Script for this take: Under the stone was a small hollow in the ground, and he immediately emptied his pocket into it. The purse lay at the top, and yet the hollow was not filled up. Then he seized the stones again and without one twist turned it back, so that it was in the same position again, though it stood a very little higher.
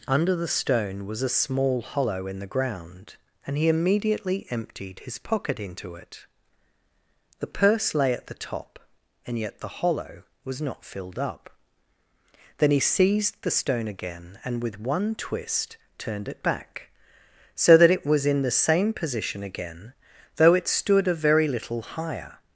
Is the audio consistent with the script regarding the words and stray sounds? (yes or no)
no